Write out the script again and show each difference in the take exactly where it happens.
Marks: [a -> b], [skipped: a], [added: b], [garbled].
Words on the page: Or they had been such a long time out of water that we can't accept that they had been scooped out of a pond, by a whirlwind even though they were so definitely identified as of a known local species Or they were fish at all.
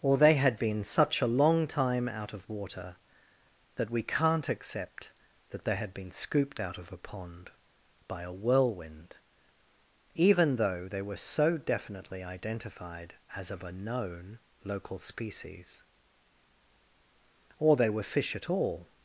Or they had been such a long time out of water that we can't accept that they had been scooped out of a pond, by a whirlwind even though they were so definitely identified as of a known local species Or they were fish at all.